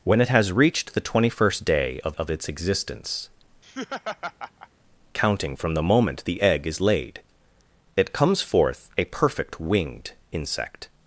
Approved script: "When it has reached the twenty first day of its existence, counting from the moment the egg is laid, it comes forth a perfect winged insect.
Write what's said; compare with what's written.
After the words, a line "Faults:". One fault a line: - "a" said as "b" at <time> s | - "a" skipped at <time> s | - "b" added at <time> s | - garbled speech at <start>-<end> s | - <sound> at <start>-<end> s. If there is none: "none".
"When it has reached the twenty first day of of its existence, counting from the moment the egg is laid, it comes forth a perfect winged insect.
Faults:
- "of" added at 2.2 s
- laugh at 3.6-4.7 s